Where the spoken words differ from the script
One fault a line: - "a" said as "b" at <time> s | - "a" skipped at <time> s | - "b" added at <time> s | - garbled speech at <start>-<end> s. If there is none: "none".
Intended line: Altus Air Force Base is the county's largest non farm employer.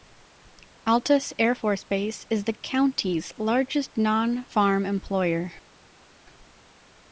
none